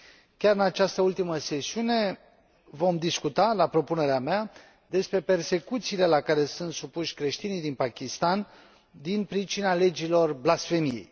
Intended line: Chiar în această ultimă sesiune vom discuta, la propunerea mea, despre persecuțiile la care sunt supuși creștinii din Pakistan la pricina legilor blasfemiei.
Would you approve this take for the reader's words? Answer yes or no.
no